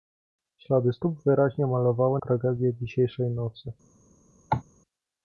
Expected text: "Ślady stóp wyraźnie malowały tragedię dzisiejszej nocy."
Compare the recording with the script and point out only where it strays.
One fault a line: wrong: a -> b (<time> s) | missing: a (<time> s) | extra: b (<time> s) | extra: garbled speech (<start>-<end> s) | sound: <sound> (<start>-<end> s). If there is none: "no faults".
sound: cough (4.5-4.6 s)